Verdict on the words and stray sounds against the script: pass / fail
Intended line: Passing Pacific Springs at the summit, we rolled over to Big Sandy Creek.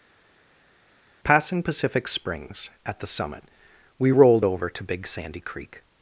pass